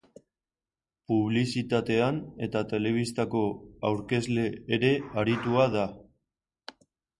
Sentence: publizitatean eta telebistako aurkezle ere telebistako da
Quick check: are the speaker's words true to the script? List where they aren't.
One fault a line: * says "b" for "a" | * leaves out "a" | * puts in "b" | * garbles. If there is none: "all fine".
* says "aritua" for "telebistako"